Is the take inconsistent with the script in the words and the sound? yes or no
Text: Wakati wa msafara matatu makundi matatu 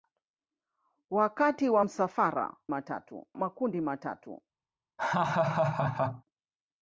yes